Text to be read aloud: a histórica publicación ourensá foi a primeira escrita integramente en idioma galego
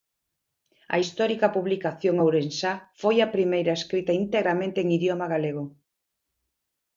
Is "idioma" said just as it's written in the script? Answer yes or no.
yes